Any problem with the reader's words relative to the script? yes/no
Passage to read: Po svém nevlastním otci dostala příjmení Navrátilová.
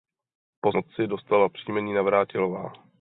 yes